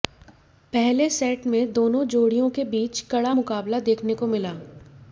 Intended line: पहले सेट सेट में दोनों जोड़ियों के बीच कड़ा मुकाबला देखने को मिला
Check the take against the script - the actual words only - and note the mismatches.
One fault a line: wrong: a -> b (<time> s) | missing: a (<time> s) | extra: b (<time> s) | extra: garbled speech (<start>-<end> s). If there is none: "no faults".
missing: सेट (1.4 s)